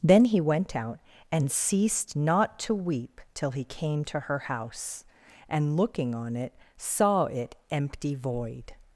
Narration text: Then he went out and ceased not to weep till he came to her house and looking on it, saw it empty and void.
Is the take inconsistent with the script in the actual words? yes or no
yes